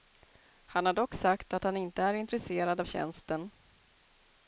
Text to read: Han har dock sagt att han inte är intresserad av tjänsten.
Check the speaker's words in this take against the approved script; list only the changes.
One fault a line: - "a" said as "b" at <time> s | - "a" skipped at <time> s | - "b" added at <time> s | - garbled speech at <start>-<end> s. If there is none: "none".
none